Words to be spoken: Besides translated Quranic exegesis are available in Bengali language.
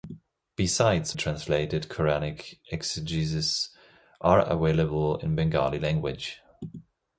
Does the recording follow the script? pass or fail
pass